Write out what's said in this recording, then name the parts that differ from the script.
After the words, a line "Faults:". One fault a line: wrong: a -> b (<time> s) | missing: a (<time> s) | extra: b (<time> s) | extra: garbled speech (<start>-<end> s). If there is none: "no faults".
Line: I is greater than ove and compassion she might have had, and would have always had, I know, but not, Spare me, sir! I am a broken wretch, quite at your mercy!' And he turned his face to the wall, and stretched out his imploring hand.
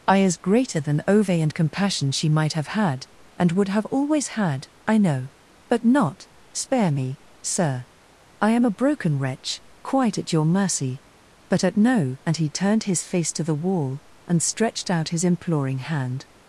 I is greater than ove and compassion she might have had, and would have always had, I know, but not, Spare me, sir! I am a broken wretch, quite at your mercy!' but at no And he turned his face to the wall, and stretched out his imploring hand.
Faults:
extra: but at no (11.5 s)